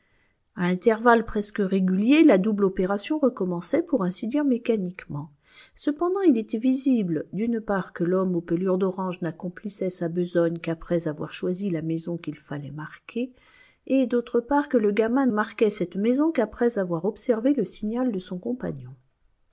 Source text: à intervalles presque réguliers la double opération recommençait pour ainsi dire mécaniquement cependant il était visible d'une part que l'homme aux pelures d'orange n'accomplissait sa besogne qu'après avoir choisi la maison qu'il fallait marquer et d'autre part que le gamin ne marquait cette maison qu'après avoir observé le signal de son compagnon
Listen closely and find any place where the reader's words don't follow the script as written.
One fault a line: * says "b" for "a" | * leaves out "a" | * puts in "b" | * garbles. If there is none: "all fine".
* leaves out "ne"